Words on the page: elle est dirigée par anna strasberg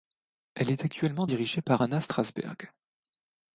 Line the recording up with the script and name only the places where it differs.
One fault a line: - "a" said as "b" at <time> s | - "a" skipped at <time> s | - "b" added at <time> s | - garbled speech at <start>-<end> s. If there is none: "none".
- "actuellement" added at 0.8 s